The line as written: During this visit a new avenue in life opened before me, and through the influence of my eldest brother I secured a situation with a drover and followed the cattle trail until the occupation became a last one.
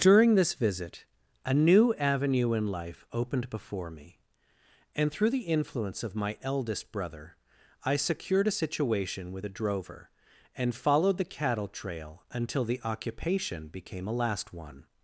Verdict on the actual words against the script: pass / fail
pass